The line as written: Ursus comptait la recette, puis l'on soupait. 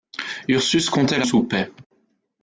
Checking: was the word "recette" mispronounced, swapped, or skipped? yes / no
yes